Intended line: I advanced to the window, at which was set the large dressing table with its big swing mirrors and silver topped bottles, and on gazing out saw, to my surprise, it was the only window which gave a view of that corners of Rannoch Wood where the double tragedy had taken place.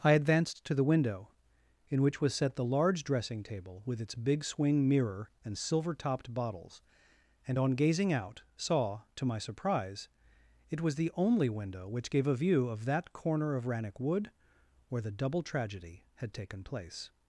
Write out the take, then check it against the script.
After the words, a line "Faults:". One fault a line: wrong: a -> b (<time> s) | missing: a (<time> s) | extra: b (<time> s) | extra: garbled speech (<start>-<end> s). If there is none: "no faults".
I advanced to the window, in which was set the large dressing table with its big swing mirror and silver topped bottles, and on gazing out saw, to my surprise, it was the only window which gave a view of that corner of Rannoch Wood where the double tragedy had taken place.
Faults:
wrong: at -> in (1.9 s)
wrong: mirrors -> mirror (4.9 s)
wrong: corners -> corner (13.1 s)